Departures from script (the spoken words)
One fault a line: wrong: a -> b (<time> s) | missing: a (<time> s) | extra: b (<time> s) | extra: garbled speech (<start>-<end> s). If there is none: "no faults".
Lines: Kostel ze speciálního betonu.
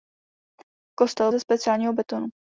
no faults